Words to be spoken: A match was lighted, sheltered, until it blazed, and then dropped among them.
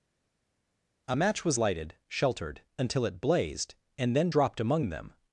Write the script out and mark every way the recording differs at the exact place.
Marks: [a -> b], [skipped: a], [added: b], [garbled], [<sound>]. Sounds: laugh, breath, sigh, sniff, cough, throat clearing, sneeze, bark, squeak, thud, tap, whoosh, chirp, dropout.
A match was lighted, sheltered, until it blazed, and then dropped among them.